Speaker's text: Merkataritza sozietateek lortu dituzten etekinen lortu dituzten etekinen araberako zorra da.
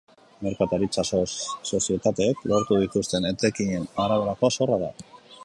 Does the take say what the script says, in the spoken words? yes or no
no